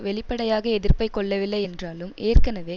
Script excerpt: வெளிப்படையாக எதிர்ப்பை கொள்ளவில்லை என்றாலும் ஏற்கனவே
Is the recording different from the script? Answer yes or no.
no